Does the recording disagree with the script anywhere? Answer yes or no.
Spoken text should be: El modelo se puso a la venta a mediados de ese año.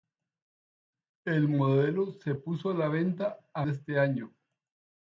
yes